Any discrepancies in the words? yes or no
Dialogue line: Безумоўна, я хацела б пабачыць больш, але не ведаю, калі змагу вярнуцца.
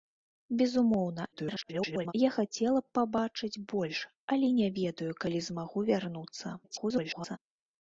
yes